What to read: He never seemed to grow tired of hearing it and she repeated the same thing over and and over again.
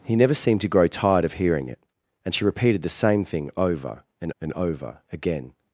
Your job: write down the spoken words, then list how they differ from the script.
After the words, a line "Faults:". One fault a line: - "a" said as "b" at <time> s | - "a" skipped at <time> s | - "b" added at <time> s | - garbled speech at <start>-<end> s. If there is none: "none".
He never seemed to grow tired of hearing it and she repeated the same thing over and and over again.
Faults:
none